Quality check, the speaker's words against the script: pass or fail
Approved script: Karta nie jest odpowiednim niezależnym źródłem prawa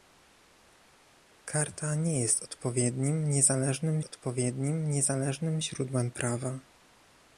fail